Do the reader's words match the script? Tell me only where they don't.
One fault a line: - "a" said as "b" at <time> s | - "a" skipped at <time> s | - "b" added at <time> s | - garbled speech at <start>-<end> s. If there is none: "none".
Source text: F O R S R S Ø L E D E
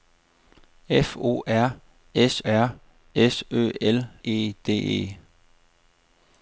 none